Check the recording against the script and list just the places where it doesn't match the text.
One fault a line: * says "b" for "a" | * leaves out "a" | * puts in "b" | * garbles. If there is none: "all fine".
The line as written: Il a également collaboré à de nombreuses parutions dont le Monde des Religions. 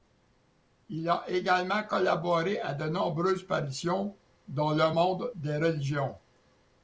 all fine